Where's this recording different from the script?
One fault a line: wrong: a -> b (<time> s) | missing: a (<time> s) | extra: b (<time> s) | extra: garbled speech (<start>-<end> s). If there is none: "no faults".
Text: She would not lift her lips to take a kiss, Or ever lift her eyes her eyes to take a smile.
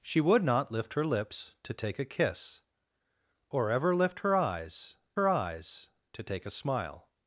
no faults